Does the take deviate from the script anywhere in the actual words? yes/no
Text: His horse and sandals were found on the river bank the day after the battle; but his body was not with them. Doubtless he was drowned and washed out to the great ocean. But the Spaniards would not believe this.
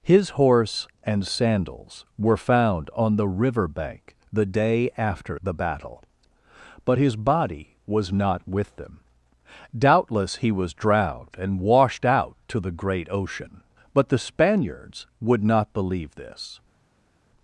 no